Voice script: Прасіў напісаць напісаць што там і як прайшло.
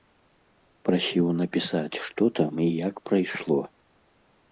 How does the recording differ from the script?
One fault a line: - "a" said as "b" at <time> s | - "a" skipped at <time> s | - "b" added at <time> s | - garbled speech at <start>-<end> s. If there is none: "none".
- "напісаць" skipped at 2.0 s